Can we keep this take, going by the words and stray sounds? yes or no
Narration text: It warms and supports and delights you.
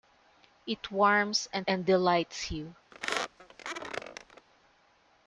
no